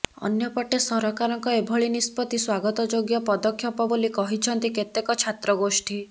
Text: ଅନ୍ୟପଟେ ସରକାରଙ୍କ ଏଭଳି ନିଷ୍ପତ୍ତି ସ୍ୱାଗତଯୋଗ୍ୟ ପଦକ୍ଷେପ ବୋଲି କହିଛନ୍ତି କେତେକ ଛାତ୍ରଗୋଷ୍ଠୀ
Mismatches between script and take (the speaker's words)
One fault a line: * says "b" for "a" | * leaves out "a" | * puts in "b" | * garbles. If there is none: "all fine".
all fine